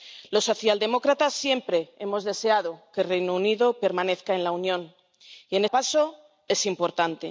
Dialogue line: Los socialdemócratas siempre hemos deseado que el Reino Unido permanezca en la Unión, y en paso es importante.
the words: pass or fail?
pass